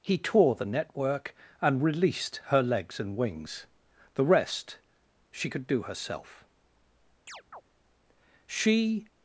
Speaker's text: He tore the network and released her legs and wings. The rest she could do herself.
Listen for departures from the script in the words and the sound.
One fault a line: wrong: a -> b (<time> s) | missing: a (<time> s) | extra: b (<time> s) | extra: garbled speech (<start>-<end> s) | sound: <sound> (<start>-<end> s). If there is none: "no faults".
sound: chirp (7.3-7.6 s)
extra: She (8.5 s)